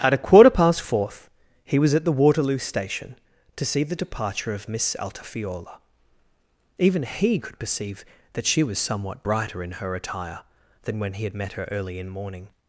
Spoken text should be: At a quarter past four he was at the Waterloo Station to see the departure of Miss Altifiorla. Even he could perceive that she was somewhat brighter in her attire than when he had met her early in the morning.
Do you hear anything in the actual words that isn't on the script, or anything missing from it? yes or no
yes